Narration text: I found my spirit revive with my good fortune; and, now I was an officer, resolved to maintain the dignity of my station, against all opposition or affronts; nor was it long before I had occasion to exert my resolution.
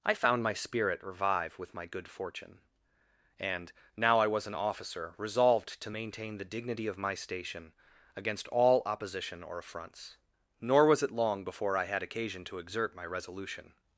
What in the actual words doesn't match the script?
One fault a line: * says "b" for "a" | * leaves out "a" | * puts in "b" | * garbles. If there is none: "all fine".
all fine